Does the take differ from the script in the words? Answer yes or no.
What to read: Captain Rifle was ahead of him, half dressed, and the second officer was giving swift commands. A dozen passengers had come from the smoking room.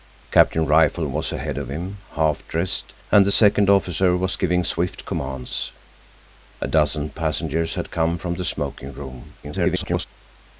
yes